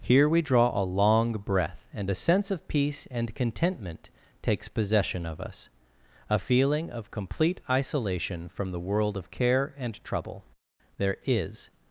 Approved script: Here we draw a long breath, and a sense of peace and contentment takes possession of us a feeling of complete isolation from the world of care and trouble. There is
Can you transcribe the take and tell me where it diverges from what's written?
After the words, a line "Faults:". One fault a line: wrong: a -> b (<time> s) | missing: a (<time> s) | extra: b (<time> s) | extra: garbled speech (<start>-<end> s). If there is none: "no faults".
Here we draw a long breath, and a sense of peace and contentment takes possession of us a feeling of complete isolation from the world of care and trouble. There is
Faults:
no faults